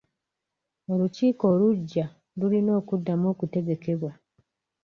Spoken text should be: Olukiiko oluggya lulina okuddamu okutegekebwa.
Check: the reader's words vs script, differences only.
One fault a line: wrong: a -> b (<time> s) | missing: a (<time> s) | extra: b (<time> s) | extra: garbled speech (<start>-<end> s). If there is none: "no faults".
no faults